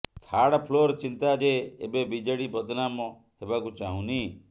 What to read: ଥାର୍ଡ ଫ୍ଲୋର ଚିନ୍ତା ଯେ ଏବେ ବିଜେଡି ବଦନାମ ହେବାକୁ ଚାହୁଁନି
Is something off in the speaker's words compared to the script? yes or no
no